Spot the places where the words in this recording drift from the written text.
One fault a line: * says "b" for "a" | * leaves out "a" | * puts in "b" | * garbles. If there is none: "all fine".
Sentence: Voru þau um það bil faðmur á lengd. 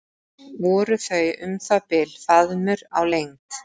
all fine